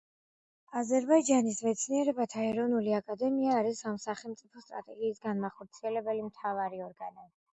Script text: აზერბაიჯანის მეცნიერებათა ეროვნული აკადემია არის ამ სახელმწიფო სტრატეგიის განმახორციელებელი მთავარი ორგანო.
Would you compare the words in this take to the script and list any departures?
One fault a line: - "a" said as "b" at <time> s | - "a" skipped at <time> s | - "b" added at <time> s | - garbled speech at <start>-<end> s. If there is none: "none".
none